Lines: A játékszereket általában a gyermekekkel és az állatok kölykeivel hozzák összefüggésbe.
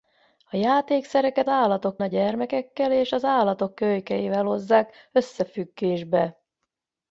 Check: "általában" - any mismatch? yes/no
yes